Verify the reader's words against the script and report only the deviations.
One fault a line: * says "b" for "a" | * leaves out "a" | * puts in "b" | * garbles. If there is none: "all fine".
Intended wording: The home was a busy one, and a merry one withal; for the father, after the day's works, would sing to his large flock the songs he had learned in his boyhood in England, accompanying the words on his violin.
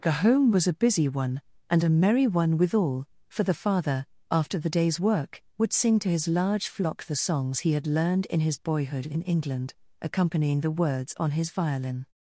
* says "work" for "works"